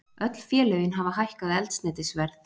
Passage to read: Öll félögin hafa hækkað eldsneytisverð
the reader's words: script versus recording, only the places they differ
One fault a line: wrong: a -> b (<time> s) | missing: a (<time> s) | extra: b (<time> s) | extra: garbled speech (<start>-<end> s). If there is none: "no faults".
no faults